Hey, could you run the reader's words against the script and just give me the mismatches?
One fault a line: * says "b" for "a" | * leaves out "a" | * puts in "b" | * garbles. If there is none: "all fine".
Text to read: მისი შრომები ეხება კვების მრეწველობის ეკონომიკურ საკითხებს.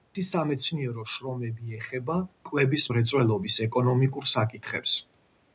* puts in "სამეცნიერო"